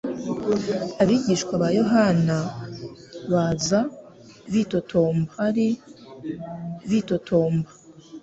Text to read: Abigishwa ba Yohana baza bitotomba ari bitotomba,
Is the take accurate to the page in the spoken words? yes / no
yes